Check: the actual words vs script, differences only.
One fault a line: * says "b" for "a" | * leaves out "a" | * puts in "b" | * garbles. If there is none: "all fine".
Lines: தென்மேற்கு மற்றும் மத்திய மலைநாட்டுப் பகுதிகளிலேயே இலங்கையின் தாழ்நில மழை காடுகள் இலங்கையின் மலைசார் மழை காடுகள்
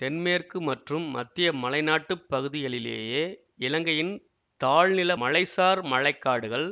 * leaves out "மழை காடுகள் இலங்கையின்"